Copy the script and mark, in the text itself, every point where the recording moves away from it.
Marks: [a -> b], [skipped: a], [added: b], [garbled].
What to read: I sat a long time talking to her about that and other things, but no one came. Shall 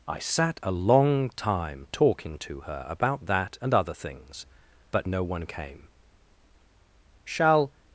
I sat a long time talking to her about that and other things, but no one came. Shall